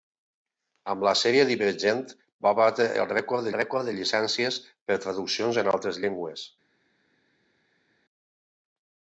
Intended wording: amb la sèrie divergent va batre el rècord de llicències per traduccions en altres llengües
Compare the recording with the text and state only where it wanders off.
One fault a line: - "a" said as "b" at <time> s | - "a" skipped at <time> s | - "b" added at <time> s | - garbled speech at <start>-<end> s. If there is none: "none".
- "rècord" added at 3.6 s